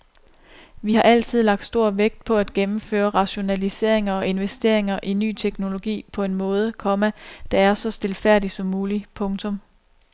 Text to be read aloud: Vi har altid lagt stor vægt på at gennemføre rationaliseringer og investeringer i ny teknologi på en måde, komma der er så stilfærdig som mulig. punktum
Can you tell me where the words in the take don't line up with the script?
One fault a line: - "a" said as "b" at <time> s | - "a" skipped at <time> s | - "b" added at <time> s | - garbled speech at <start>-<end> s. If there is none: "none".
none